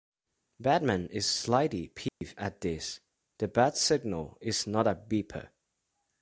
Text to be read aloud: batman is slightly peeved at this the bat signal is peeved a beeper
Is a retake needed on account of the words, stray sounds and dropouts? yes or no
yes